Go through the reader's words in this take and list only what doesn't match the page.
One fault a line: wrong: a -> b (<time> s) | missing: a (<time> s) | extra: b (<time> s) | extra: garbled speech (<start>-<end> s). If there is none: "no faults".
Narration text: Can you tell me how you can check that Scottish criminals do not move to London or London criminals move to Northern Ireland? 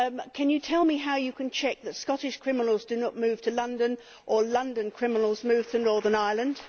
no faults